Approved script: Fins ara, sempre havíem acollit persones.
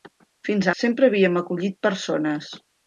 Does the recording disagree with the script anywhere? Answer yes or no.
yes